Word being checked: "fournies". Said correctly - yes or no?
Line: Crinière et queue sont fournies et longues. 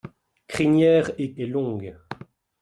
no